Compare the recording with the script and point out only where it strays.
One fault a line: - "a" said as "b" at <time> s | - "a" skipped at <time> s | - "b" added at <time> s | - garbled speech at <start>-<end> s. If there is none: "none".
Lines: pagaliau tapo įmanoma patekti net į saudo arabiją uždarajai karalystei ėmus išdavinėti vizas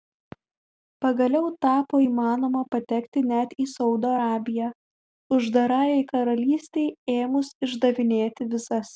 none